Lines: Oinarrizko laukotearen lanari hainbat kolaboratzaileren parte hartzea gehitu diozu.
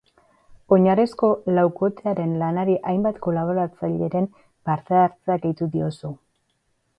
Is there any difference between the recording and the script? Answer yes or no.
no